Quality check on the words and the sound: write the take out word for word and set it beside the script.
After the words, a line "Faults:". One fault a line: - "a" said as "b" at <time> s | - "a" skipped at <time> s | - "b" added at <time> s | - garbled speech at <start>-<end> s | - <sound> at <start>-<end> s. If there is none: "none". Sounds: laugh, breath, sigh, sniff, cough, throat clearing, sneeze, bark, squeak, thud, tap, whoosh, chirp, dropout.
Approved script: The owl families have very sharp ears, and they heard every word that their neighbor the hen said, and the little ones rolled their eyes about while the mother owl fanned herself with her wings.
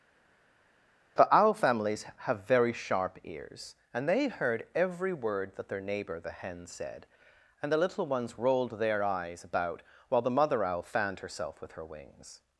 The owl families have very sharp ears, and they heard every word that their neighbor the hen said, and the little ones rolled their eyes about while the mother owl fanned herself with her wings.
Faults:
none